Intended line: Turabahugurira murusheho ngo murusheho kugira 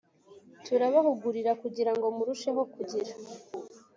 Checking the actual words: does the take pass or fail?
fail